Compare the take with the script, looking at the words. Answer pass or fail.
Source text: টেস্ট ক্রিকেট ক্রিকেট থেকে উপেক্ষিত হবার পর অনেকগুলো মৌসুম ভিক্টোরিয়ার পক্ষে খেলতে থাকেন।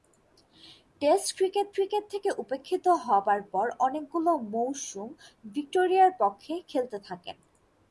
pass